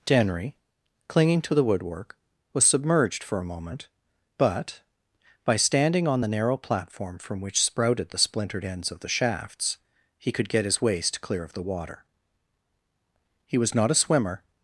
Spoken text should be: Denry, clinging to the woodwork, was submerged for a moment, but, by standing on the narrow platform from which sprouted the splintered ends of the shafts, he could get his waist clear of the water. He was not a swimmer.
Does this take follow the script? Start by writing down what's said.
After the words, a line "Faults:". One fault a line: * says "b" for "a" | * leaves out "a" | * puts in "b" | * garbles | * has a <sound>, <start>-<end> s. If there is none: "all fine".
Denry, clinging to the woodwork, was submerged for a moment, but, by standing on the narrow platform from which sprouted the splintered ends of the shafts, he could get his waist clear of the water. He was not a swimmer.
Faults:
all fine